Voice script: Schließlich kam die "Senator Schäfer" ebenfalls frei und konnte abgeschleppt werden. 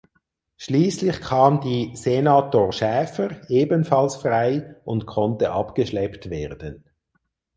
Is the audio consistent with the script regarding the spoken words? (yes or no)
yes